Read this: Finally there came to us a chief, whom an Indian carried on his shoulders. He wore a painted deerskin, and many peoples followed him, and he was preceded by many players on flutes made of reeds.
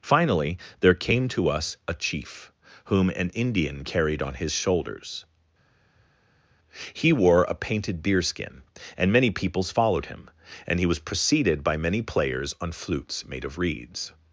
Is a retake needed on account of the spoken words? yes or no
no